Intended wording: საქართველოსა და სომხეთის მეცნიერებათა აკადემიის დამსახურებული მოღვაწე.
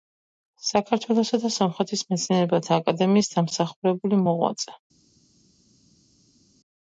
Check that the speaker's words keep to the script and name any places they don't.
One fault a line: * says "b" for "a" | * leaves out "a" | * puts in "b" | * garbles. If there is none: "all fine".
all fine